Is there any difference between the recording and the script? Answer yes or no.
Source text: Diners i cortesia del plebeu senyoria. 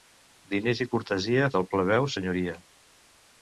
no